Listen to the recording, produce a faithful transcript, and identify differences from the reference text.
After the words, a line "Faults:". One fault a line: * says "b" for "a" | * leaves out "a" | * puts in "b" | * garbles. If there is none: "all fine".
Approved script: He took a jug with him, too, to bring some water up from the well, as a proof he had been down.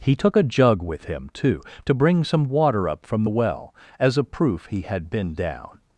He took a jug with him, too, to bring some water up from the well, as a proof he had been down.
Faults:
all fine